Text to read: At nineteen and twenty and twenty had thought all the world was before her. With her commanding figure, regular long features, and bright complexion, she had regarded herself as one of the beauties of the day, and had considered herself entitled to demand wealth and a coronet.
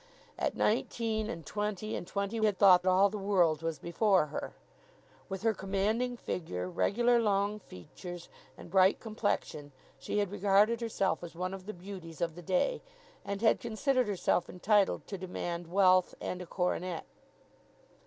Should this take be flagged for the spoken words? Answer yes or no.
no